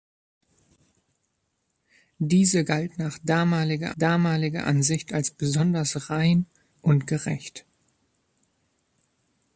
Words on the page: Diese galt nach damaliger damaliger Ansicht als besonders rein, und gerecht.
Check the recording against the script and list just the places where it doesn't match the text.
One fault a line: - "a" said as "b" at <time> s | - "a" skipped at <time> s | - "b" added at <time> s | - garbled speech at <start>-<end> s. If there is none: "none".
none